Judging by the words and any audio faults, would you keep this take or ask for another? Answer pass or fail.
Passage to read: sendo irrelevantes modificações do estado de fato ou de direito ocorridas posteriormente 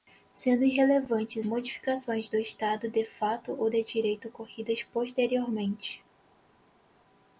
pass